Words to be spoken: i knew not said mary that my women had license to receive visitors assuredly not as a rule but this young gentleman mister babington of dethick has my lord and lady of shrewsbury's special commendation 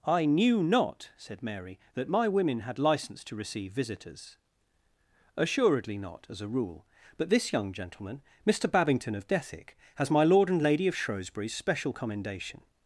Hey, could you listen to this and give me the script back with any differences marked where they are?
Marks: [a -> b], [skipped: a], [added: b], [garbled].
i knew not said mary that my women had license to receive visitors assuredly not as a rule but this young gentleman mister babington of dethick has my lord and lady of shrewsbury's special commendation